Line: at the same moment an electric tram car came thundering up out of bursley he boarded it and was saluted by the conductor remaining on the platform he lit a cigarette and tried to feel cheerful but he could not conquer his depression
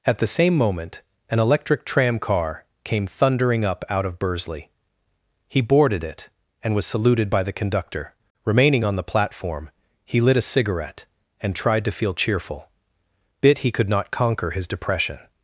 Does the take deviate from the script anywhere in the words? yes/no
yes